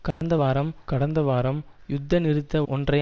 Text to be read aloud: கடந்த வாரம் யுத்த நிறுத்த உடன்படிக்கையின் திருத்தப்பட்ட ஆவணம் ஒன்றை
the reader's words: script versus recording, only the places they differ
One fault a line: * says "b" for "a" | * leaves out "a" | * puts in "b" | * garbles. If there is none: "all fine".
* puts in "கடந்த வாரம்"
* leaves out "உடன்படிக்கையின் திருத்தப்பட்ட ஆவணம்"